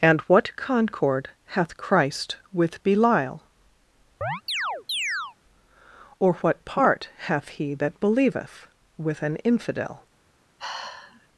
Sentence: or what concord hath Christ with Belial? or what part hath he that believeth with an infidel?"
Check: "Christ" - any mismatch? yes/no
no